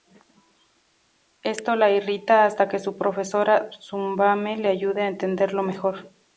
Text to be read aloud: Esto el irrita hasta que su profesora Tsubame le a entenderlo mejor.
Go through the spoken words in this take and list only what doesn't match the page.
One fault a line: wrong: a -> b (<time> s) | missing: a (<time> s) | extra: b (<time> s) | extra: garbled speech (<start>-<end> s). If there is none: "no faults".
wrong: el -> la (1.8 s)
extra: ayuda (4.7 s)